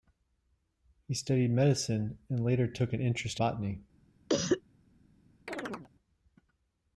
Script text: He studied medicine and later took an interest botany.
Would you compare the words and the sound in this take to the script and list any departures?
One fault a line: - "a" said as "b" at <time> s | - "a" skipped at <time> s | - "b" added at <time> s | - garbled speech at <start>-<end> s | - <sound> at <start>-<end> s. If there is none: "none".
- cough at 4.3-4.6 s
- chirp at 5.5-5.9 s